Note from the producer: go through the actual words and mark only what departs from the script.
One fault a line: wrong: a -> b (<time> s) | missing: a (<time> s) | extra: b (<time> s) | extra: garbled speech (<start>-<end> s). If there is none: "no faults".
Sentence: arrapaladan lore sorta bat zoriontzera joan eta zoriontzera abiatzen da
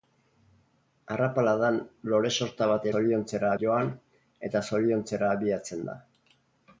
no faults